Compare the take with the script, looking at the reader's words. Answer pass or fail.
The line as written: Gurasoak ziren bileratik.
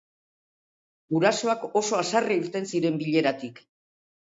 fail